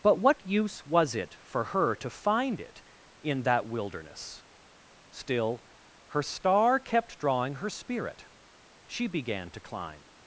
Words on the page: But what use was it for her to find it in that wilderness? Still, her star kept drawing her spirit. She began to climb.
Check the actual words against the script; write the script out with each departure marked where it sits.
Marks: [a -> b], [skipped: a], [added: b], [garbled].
But what use was it for her to find it in that wilderness? Still, her star kept drawing her spirit. She began to climb.